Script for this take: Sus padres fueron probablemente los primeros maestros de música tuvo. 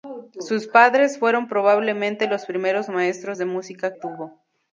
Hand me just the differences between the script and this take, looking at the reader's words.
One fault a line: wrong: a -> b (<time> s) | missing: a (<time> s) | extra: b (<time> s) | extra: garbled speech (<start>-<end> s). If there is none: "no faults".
no faults